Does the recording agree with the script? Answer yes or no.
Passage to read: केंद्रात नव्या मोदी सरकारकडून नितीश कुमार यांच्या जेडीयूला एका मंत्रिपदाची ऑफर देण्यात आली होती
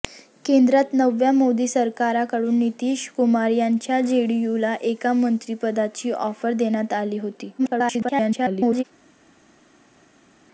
no